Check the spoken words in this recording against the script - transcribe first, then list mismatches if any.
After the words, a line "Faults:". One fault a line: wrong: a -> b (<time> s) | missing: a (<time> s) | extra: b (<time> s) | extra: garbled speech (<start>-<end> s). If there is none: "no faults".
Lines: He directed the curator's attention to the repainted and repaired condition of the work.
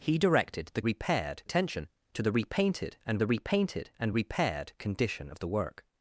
He directed the repaired attention to the repainted and the repainted and repaired condition of the work.
Faults:
wrong: curator's -> repaired (0.8 s)
extra: the repainted and (3.2 s)